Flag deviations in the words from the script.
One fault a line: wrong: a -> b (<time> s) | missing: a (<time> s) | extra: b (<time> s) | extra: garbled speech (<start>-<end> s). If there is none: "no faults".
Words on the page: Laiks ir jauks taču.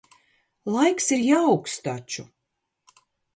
no faults